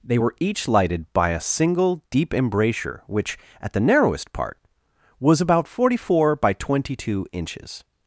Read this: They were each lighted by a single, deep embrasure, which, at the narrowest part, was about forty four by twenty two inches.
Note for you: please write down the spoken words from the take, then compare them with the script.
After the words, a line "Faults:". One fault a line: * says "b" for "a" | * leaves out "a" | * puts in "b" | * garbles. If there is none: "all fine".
They were each lighted by a single, deep embrasure, which, at the narrowest part, was about forty four by twenty two inches.
Faults:
all fine